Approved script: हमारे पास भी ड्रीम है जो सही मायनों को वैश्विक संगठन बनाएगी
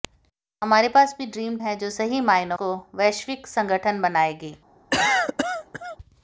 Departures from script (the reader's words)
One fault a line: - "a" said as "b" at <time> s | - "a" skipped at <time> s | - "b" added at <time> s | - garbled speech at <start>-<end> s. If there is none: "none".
none